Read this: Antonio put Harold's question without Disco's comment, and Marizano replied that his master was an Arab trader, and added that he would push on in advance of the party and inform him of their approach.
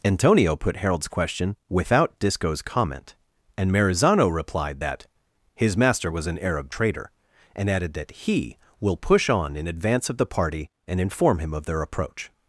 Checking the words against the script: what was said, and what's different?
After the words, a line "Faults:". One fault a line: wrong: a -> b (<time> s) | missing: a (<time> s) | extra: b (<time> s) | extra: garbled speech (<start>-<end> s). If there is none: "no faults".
Antonio put Harold's question without Disco's comment, and Marizano replied that his master was an Arab trader, and added that he will push on in advance of the party and inform him of their approach.
Faults:
wrong: would -> will (8.8 s)